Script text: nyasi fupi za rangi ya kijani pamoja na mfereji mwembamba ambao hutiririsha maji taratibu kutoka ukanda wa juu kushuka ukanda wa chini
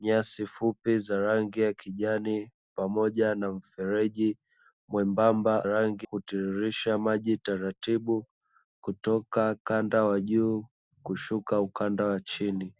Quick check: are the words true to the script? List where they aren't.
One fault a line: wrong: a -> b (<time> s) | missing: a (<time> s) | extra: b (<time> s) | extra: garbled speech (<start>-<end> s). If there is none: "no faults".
wrong: ambao -> rangi (5.7 s)